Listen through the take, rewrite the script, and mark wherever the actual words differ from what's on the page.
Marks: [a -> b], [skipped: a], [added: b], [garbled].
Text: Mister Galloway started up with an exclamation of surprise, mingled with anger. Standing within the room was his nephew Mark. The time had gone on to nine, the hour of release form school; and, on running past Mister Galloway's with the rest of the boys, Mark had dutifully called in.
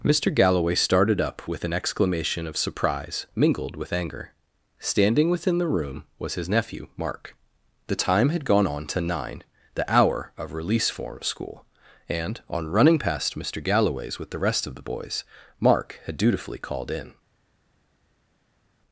Mister Galloway started up with an exclamation of surprise, mingled with anger. Standing within the room was his nephew Mark. The time had gone on to nine, the hour of release form school; and, on running past Mister Galloway's with the rest of the boys, Mark had dutifully called in.